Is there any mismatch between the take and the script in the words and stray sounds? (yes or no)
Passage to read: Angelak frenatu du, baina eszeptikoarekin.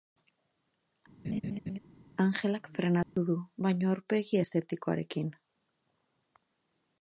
yes